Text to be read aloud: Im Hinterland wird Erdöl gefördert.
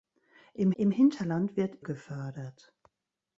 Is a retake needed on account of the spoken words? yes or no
yes